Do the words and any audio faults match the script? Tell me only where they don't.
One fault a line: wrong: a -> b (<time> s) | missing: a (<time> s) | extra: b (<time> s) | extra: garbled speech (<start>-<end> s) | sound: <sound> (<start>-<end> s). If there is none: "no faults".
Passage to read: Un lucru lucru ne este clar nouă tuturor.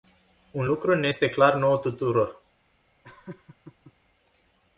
missing: lucru (0.9 s)
sound: laugh (3.0-3.9 s)